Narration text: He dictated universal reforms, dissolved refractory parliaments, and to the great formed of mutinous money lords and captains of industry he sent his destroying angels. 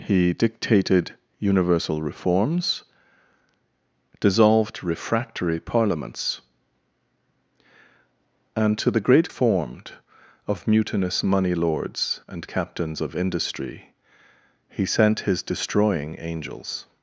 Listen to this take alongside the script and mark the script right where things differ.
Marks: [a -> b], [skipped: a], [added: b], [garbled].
He dictated universal reforms, dissolved refractory parliaments, and to the great formed of mutinous money lords and captains of industry he sent his destroying angels.